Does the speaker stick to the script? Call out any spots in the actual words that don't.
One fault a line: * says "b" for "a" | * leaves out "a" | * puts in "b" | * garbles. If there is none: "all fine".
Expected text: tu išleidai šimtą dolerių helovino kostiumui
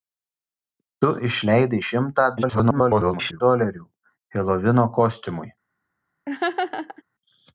* garbles